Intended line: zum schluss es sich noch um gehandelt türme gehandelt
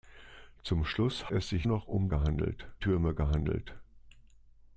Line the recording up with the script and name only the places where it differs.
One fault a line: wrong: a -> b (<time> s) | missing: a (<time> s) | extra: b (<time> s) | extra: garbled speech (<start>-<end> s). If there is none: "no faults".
no faults